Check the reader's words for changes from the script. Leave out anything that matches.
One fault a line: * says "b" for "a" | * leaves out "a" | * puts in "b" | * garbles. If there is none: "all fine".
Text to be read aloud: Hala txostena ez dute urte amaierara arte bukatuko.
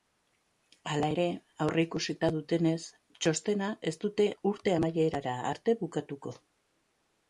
* puts in "ere aurreikusita dutenez"